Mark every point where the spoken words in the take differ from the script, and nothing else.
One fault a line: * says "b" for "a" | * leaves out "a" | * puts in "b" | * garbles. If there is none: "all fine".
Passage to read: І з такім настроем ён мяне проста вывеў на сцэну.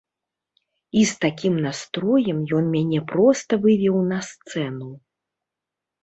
all fine